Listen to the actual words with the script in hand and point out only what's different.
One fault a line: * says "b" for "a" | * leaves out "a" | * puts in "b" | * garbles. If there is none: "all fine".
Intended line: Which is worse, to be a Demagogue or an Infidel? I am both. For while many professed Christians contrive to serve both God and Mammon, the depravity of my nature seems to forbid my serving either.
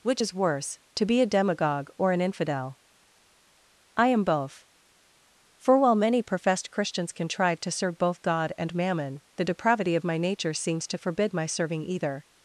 all fine